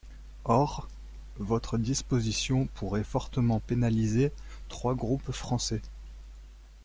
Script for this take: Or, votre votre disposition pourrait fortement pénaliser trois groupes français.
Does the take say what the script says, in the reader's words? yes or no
no